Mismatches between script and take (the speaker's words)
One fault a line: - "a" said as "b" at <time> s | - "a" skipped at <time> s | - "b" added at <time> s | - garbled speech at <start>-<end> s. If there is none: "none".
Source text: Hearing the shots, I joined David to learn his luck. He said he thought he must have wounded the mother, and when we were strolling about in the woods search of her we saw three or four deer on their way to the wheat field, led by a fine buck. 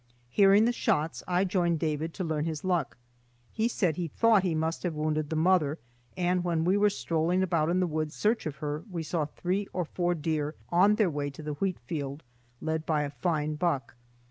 none